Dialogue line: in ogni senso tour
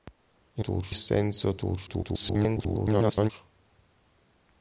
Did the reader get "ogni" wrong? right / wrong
wrong